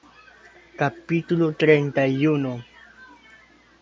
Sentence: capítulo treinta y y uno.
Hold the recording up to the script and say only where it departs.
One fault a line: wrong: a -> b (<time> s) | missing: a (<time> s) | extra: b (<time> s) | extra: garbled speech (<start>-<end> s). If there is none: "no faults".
missing: y (2.2 s)